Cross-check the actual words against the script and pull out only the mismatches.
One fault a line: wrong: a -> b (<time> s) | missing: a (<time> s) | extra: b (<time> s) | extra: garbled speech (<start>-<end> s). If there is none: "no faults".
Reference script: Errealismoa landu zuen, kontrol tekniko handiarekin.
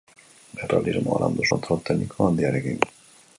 missing: zuen (1.5 s)